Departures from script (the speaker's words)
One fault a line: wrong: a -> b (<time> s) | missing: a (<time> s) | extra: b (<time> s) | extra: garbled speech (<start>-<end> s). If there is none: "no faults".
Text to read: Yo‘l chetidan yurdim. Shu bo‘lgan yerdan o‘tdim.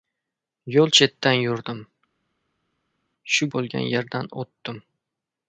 no faults